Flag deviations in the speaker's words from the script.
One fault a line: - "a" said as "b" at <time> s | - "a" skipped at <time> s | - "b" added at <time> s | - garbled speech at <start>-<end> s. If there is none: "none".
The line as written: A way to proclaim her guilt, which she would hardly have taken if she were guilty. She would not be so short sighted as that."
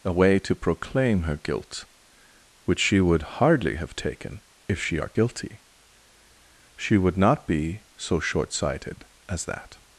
- "were" said as "are" at 4.9 s